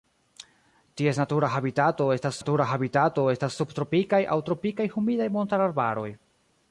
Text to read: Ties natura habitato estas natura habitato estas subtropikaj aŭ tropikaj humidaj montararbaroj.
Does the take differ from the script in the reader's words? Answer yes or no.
no